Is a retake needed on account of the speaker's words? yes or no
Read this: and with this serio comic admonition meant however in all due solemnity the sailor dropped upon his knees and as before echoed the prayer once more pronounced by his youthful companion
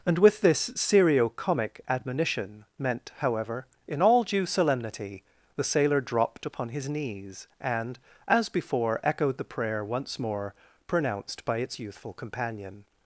yes